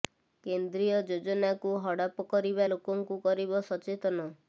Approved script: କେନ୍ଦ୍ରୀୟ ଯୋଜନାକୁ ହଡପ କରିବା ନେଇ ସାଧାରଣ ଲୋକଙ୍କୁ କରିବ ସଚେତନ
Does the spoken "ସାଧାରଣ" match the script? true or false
false